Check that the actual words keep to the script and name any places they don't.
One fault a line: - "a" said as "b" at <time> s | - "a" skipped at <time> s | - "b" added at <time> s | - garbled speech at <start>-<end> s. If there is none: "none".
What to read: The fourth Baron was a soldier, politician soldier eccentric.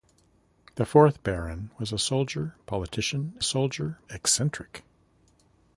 none